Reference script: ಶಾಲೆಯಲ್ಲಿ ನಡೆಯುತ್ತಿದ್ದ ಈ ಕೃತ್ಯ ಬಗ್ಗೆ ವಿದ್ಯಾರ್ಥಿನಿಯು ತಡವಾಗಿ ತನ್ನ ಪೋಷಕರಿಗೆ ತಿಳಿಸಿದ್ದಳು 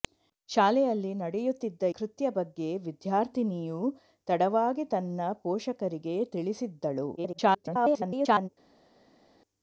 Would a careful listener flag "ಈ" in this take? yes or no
yes